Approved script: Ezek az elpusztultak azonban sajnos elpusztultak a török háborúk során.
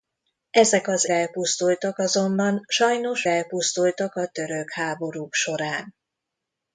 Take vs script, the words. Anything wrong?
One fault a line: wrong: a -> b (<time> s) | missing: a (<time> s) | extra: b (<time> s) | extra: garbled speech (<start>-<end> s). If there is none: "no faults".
no faults